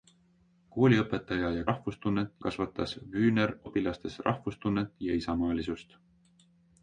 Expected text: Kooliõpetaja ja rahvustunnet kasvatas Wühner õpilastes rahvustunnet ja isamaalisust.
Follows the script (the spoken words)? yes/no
yes